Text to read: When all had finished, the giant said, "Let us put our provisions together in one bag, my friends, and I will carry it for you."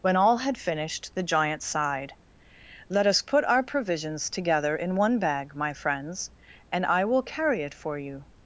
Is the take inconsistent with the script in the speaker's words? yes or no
yes